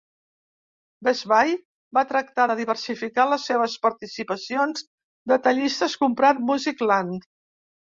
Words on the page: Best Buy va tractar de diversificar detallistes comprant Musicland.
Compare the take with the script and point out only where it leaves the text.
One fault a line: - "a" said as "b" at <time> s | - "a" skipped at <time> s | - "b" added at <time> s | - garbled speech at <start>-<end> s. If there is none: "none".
- "les seves participacions" added at 3.3 s